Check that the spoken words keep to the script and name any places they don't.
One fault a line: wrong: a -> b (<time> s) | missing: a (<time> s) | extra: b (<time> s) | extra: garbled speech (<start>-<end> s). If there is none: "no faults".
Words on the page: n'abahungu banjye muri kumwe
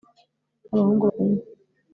missing: banjye muri (1.1 s)